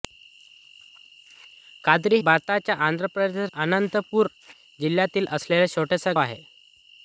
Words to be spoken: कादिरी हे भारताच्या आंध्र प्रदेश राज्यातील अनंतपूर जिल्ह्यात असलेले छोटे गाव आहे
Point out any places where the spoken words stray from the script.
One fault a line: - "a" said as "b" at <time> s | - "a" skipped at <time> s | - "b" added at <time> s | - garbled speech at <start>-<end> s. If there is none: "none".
- "हे" skipped at 2.2 s
- "राज्यातील" skipped at 3.5 s
- "गाव" skipped at 6.1 s